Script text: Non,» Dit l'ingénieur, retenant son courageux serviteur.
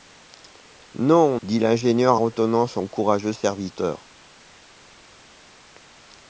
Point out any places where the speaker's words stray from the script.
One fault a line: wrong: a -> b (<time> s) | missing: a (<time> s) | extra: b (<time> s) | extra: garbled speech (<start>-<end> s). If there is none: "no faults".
no faults